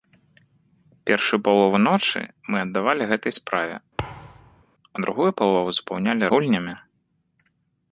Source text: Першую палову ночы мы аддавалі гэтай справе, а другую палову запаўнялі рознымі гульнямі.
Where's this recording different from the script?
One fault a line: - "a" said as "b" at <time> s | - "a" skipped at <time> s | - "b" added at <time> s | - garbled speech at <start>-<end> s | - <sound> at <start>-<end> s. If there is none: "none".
- thud at 4.0-4.6 s
- "рознымі" skipped at 6.2 s